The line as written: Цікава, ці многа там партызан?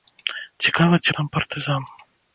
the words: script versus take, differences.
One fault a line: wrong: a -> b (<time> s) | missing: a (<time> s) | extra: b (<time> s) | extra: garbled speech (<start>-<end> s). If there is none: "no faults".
missing: многа (1.1 s)